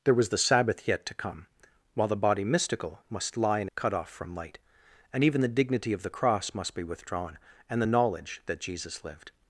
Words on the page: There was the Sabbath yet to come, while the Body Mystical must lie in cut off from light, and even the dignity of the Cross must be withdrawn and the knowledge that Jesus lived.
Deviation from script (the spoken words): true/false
false